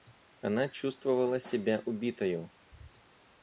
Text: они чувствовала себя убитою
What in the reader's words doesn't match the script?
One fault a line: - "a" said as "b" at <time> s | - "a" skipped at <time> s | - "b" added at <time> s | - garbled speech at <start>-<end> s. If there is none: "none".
- "они" said as "она" at 0.4 s